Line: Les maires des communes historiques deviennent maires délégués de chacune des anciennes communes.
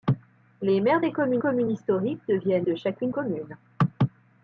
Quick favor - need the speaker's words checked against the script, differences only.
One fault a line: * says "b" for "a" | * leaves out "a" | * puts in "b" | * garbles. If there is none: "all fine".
* puts in "communes"
* leaves out "maires délégués"
* leaves out "des anciennes"